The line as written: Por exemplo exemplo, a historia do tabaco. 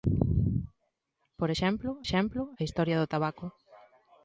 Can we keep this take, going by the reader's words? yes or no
yes